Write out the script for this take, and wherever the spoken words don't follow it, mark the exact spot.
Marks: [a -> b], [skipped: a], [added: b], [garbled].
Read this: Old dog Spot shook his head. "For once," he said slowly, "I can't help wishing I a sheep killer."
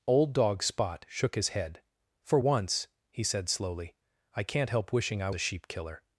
Old dog Spot shook his head. "For once," he said slowly, "I can't help wishing I a sheep killer."